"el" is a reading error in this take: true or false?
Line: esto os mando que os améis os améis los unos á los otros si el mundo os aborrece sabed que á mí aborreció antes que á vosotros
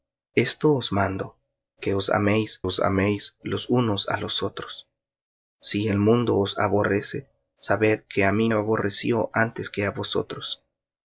false